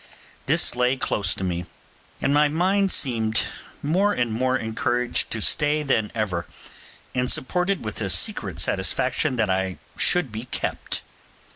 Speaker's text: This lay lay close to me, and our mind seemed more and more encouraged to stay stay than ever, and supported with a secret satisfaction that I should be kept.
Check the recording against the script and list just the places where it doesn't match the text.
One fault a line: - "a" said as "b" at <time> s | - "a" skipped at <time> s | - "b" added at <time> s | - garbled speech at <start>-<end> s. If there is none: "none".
- "lay" skipped at 1.0 s
- "our" said as "my" at 2.3 s
- "stay" skipped at 5.8 s